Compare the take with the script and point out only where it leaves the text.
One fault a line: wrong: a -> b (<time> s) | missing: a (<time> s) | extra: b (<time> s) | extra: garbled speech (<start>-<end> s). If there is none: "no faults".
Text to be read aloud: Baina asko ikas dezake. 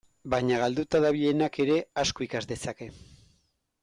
extra: galduta dabilenak ere (0.6 s)